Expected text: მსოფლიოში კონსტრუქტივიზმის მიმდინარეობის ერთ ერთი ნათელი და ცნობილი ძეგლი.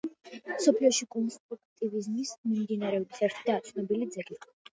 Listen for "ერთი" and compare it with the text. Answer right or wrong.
wrong